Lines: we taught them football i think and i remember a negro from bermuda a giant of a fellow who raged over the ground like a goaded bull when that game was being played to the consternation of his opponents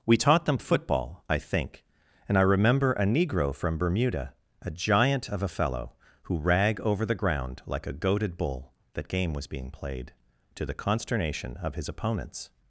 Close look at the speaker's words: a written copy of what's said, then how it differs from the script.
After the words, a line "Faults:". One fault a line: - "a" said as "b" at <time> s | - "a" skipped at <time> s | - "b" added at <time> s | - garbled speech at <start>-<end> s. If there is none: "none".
we taught them football i think and i remember a negro from bermuda a giant of a fellow who rag over the ground like a goaded bull that game was being played to the consternation of his opponents
Faults:
- "raged" said as "rag" at 6.4 s
- "when" skipped at 8.7 s